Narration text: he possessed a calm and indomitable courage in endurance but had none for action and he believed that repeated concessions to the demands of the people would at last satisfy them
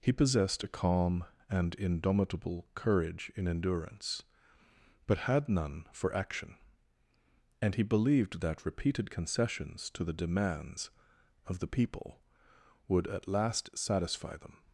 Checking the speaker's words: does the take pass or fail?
pass